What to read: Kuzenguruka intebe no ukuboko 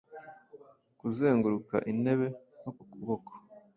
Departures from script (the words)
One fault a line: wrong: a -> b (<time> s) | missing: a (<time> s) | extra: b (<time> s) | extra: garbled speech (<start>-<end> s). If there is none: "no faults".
no faults